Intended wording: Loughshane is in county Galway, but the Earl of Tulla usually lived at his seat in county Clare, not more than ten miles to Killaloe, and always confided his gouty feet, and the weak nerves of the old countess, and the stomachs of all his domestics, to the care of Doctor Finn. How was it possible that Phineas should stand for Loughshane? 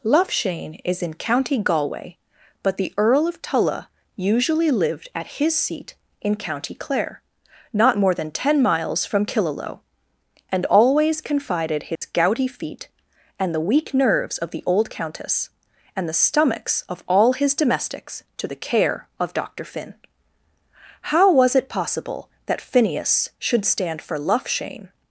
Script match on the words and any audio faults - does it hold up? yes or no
no